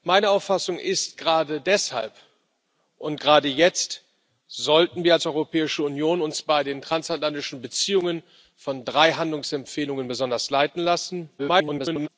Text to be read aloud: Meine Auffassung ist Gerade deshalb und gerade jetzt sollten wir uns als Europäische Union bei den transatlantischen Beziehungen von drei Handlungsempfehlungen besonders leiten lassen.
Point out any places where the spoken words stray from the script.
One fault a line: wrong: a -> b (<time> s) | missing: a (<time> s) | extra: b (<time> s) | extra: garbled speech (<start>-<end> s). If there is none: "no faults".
extra: garbled speech (11.4-12.1 s)